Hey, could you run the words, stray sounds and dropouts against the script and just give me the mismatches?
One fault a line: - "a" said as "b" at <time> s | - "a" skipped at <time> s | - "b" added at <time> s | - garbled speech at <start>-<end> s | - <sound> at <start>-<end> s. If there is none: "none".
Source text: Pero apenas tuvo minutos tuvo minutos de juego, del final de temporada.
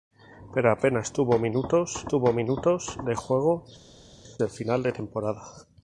none